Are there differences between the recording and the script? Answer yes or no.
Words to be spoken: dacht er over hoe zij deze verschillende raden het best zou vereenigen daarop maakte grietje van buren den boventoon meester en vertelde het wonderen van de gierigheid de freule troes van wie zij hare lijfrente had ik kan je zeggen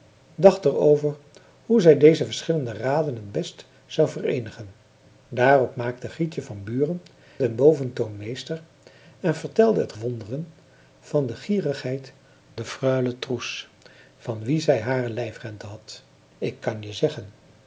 no